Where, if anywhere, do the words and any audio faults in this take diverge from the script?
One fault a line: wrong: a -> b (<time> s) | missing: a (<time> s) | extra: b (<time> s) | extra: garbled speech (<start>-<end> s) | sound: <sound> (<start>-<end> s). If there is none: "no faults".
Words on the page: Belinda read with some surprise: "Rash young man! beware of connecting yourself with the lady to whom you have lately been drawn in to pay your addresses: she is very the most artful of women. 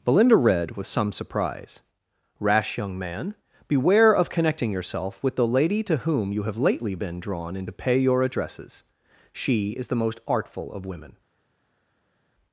missing: very (9.9 s)